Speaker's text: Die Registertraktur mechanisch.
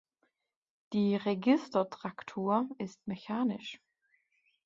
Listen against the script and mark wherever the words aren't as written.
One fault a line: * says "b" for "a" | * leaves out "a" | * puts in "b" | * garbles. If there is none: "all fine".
* puts in "ist"